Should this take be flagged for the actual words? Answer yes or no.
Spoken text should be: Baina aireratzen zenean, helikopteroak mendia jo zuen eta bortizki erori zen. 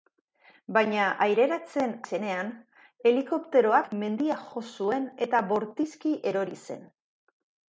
no